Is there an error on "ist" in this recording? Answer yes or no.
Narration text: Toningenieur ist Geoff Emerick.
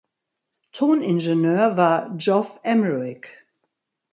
yes